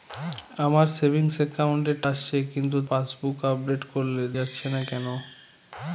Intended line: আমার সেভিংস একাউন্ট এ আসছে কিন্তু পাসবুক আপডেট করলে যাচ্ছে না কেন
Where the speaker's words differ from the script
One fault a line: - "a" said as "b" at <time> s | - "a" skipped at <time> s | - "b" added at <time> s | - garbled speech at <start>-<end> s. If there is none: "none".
none